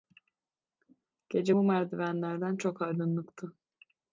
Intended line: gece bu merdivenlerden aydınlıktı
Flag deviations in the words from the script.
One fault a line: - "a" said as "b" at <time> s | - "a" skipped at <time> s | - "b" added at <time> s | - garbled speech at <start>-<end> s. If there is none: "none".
- "çok" added at 2.6 s